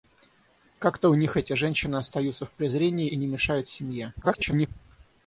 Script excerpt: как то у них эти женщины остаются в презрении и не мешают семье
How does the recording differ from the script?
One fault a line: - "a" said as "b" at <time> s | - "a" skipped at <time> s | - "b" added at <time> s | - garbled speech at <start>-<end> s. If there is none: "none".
- garbled speech at 4.2-4.7 s